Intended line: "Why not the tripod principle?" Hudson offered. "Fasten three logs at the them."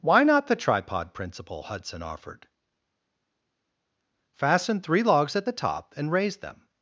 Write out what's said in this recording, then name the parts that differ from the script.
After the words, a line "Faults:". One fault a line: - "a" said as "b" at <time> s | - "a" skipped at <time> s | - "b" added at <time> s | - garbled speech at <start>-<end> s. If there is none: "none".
"Why not the tripod principle?" Hudson offered. "Fasten three logs at the top and raise them."
Faults:
- "top and raise" added at 5.5 s